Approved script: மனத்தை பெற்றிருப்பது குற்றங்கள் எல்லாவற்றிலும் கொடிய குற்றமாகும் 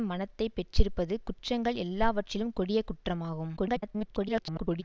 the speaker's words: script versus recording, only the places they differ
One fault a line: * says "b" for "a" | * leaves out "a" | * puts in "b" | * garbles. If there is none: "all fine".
* garbles